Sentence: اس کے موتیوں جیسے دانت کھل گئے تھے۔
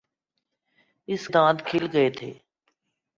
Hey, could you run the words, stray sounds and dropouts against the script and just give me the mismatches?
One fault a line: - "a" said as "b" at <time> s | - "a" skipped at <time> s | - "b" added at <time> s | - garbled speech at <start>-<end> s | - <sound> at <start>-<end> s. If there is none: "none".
- "کے موتیوں جیسے" skipped at 1.3 s